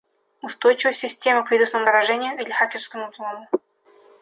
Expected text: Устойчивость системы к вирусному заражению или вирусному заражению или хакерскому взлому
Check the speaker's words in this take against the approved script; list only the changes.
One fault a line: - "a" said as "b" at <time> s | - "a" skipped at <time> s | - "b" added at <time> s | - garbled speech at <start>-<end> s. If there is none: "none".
- "вирусному заражению или" skipped at 2.5 s